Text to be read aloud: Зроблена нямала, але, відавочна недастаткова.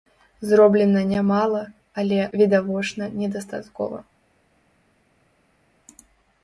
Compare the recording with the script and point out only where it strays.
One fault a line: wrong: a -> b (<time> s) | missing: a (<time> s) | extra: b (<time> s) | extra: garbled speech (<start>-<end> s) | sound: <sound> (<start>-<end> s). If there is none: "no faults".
no faults